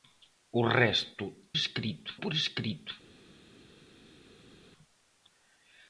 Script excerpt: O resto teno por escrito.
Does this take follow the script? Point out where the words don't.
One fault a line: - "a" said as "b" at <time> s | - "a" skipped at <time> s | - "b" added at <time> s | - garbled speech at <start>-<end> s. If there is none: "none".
- "teno" said as "escrito" at 1.6 s